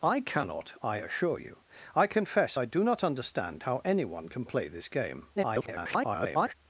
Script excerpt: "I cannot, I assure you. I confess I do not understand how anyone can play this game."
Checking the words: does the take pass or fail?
fail